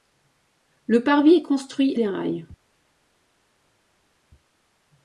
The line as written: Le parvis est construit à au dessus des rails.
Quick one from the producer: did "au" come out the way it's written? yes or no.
no